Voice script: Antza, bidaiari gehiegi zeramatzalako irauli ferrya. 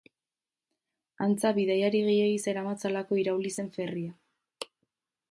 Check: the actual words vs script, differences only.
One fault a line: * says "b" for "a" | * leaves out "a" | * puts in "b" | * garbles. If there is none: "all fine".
* puts in "zen"